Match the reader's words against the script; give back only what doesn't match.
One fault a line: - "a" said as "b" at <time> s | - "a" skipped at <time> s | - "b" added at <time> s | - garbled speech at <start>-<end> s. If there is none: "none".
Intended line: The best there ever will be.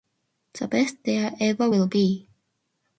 none